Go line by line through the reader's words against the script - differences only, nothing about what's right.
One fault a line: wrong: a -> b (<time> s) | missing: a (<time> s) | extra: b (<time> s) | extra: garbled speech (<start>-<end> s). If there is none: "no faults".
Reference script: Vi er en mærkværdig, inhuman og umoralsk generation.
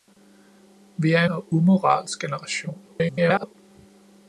missing: en mærkværdig inhuman (1.2 s)
extra: garbled speech (2.9-3.6 s)